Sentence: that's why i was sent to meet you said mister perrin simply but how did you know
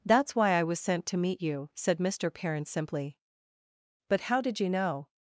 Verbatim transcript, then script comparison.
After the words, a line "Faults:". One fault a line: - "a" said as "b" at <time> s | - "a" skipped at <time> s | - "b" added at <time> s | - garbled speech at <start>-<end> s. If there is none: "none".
that's why i was sent to meet you said mister perrin simply but how did you know
Faults:
none